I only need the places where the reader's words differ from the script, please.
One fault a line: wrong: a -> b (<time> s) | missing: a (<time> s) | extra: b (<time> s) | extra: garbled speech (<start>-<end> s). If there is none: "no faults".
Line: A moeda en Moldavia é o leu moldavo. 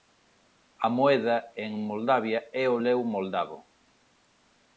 no faults